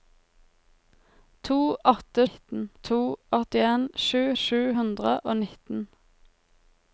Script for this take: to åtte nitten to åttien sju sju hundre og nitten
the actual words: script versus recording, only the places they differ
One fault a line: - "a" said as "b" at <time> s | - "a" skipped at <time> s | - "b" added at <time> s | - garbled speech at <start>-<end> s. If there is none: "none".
none